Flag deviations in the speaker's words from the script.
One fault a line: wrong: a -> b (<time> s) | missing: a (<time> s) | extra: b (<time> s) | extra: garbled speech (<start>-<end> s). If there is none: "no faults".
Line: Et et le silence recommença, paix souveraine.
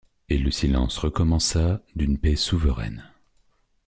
missing: et (0.4 s)
extra: d'une (1.9 s)